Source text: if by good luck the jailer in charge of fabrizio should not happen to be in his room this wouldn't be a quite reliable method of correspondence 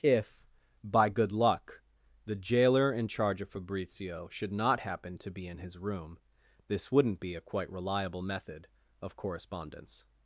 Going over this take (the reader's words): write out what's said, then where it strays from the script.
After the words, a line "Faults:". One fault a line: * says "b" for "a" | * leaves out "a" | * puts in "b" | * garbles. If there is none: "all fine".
if by good luck the jailer in charge of fabrizio should not happen to be in his room this wouldn't be a quite reliable method of correspondence
Faults:
all fine